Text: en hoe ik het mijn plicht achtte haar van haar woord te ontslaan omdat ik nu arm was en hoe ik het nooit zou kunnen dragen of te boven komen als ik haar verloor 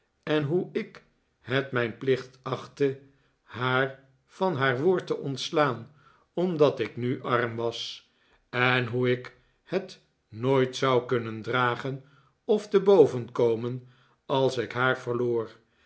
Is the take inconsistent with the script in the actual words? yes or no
no